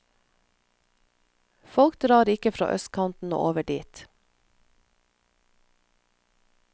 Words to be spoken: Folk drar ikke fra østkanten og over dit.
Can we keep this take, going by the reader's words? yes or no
yes